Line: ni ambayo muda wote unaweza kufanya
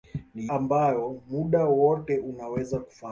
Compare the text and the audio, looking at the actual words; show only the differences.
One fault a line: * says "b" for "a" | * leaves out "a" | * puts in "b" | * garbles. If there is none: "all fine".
all fine